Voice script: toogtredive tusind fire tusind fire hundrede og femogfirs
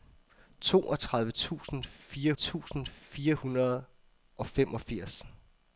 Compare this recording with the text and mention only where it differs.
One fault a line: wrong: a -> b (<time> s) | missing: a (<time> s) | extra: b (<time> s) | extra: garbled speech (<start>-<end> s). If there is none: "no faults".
no faults